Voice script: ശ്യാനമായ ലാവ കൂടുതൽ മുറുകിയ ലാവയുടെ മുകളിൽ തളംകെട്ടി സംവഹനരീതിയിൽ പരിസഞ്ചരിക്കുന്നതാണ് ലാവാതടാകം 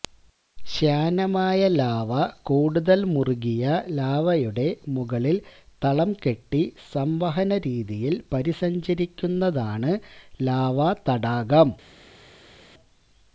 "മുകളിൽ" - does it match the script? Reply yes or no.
yes